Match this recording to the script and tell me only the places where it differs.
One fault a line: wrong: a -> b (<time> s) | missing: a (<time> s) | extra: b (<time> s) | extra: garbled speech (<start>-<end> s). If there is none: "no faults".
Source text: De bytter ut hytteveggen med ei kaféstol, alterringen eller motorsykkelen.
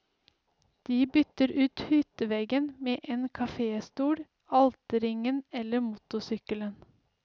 wrong: ei -> en (3.0 s)